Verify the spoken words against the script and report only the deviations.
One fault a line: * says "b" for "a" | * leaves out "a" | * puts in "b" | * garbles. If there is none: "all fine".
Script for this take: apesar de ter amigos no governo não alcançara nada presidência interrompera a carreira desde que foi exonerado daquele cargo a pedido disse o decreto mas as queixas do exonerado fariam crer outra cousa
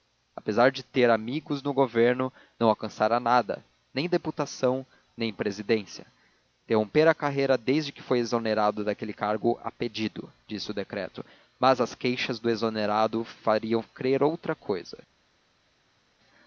* puts in "nem deputação nem"